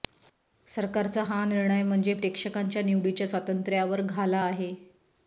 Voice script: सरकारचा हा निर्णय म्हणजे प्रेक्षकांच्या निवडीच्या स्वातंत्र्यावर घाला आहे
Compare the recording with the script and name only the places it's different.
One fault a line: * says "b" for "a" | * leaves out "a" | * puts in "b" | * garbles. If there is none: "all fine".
all fine